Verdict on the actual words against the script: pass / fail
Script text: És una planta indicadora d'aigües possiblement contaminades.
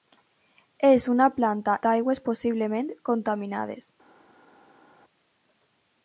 fail